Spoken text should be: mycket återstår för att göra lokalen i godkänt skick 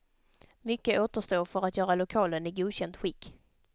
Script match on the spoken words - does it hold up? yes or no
yes